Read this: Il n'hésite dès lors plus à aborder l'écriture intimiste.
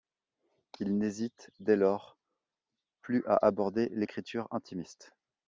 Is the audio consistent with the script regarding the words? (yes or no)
yes